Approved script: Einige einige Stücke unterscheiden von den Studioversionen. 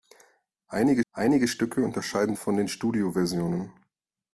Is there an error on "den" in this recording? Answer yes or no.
no